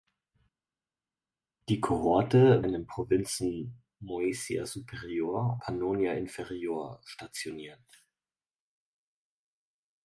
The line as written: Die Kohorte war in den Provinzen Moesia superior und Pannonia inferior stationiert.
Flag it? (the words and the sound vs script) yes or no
yes